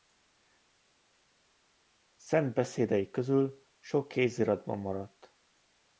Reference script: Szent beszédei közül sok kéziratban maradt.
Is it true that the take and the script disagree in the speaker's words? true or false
false